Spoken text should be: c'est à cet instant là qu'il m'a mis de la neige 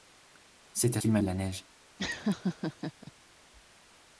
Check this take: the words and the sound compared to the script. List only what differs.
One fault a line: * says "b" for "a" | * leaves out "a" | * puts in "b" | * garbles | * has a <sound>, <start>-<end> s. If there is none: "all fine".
* leaves out "cet instant là"
* leaves out "mis"
* has a laugh, 2.0-3.1 s